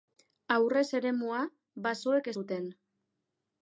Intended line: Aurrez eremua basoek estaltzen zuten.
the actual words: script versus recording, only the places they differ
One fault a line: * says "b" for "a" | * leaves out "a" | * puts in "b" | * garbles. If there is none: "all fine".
* leaves out "estaltzen"